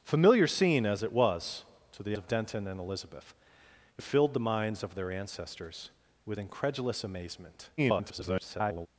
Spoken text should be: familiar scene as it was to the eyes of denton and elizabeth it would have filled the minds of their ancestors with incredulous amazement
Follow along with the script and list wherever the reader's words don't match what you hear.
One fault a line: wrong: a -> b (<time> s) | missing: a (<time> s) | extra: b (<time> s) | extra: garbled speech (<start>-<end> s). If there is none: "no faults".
missing: eyes (2.2 s)
missing: would (4.0 s)
extra: garbled speech (7.8-8.9 s)